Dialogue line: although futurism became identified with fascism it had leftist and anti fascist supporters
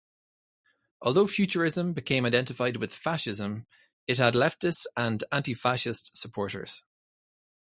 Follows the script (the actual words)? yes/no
yes